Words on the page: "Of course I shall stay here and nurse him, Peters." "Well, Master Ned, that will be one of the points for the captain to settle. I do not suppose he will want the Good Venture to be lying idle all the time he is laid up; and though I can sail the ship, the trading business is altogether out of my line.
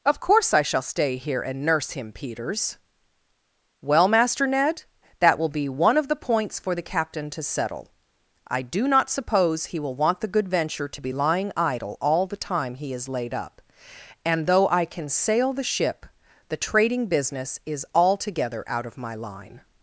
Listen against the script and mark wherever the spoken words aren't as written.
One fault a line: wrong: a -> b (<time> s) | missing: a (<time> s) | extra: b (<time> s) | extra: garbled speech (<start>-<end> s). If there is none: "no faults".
no faults